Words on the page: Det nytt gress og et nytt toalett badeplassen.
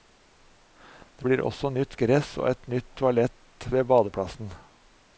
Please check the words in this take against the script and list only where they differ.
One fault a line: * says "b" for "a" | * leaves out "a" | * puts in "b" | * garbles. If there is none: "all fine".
* puts in "blir også"
* puts in "ved"